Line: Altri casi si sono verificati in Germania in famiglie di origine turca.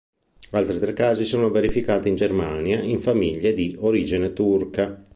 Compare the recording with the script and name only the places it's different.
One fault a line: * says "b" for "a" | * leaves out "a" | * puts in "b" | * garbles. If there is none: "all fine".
* puts in "tre"